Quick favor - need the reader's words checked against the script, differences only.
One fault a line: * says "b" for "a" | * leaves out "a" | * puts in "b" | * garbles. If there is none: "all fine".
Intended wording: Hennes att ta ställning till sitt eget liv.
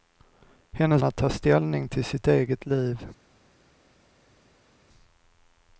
all fine